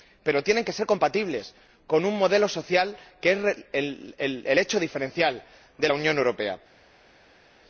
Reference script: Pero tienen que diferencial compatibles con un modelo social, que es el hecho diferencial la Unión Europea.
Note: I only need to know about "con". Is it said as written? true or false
true